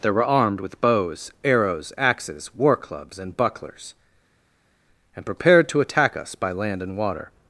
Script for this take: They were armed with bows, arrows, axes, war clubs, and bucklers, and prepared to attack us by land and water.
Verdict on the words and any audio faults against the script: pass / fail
pass